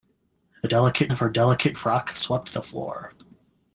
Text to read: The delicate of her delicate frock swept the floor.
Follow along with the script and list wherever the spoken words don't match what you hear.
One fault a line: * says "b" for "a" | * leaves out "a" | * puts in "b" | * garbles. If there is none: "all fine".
all fine